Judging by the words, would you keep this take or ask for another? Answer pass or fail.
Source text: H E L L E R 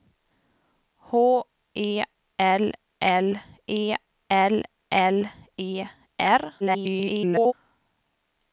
fail